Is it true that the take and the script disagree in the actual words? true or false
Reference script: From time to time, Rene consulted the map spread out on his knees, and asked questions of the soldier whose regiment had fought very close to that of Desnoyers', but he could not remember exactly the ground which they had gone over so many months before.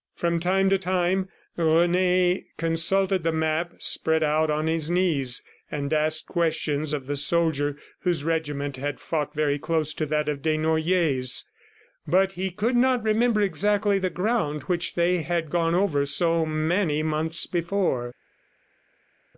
false